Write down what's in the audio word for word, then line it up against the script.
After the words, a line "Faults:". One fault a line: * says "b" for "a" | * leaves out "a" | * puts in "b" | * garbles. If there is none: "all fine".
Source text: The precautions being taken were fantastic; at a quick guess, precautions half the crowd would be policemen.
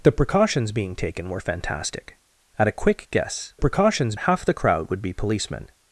The precautions being taken were fantastic; at a quick guess, precautions half the crowd would be policemen.
Faults:
all fine